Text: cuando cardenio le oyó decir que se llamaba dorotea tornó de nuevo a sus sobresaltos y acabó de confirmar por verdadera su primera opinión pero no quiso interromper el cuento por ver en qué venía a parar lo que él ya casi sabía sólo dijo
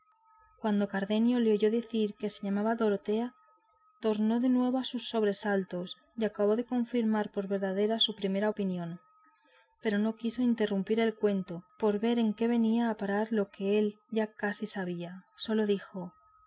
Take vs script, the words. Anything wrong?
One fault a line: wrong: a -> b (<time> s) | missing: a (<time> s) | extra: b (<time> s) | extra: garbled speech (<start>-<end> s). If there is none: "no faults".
no faults